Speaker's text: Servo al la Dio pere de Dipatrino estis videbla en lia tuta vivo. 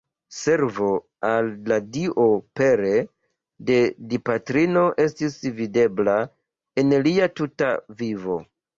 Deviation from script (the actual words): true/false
false